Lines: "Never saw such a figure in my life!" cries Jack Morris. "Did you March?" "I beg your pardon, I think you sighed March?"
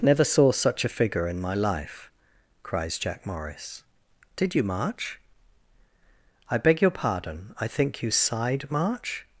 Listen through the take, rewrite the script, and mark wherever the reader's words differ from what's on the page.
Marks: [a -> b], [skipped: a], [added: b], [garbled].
"Never saw such a figure in my life!" cries Jack Morris. "Did you March?" "I beg your pardon, I think you sighed March?"